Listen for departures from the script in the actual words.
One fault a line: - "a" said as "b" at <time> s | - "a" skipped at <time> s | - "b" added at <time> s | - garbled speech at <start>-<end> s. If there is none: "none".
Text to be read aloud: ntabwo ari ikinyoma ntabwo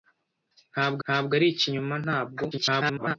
- "ntabwo" added at 1.0 s
- garbled speech at 2.5-3.2 s